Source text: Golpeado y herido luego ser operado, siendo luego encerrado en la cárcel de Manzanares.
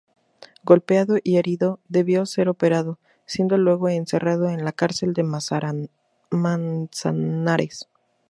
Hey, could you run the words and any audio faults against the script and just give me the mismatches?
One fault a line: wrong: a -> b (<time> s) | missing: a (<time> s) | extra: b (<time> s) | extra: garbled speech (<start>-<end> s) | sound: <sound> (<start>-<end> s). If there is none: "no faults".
wrong: luego -> debió (1.9 s)